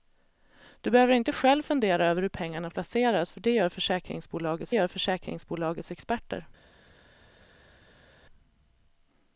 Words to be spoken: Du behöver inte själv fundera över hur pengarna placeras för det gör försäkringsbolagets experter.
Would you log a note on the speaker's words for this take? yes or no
yes